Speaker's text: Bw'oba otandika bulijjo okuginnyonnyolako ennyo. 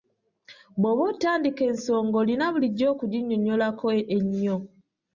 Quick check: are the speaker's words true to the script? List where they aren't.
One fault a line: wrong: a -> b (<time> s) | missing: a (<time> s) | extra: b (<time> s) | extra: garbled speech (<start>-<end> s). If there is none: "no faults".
extra: ensonga olina (1.7 s)